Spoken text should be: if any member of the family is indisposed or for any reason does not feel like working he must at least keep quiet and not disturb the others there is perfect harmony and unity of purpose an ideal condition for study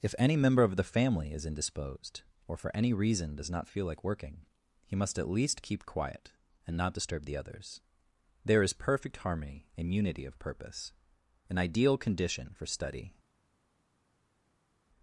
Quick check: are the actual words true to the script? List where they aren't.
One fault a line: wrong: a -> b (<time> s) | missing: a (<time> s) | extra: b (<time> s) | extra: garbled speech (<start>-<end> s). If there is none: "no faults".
no faults